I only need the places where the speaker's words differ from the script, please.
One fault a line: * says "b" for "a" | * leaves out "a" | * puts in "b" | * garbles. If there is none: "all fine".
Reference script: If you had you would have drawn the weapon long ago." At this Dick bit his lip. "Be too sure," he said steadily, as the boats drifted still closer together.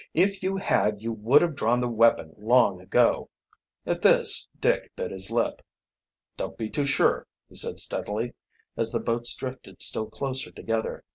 * puts in "Don't"